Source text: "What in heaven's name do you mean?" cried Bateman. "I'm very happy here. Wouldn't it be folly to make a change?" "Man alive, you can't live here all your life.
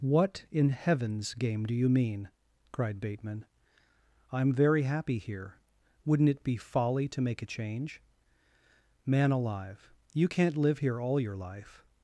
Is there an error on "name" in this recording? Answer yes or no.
yes